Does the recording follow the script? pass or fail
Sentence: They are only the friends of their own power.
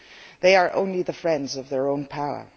pass